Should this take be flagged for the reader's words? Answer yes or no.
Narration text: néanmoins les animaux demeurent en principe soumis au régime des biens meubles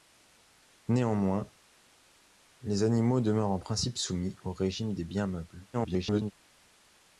yes